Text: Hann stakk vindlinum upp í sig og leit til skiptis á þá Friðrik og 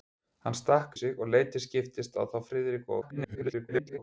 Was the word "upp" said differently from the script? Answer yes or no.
yes